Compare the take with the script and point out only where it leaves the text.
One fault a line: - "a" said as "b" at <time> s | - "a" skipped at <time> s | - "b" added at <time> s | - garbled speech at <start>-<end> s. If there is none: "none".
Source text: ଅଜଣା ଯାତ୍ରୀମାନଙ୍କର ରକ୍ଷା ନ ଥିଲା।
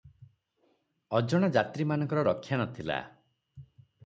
none